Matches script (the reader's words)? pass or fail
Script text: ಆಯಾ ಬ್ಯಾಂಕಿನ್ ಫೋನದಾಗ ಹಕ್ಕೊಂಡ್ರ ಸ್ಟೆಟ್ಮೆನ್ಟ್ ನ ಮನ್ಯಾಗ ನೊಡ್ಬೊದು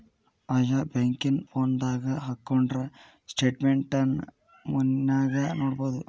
pass